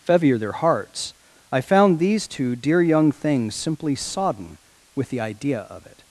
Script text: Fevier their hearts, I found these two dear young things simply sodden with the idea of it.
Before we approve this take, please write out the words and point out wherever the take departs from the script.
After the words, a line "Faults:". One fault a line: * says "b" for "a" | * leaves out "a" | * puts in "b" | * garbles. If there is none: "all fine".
Fevier their hearts, I found these two dear young things simply sodden with the idea of it.
Faults:
all fine